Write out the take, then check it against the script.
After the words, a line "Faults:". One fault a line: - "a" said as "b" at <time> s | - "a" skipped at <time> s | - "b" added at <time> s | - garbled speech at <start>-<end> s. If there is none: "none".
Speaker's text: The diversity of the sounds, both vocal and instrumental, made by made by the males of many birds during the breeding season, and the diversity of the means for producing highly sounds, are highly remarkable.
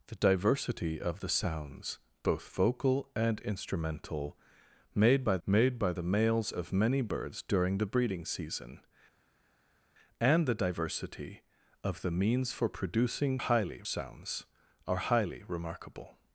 The diversity of the sounds, both vocal and instrumental, made by made by the males of many birds during the breeding season, and the diversity of the means for producing highly sounds, are highly remarkable.
Faults:
none